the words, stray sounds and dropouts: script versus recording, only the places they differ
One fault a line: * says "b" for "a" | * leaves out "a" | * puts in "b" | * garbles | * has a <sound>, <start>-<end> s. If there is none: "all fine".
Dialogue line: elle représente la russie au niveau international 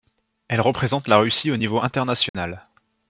* has a dropout, 2.3-2.3 s